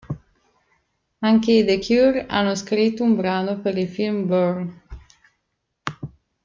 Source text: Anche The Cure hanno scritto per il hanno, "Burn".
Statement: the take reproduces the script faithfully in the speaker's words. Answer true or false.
false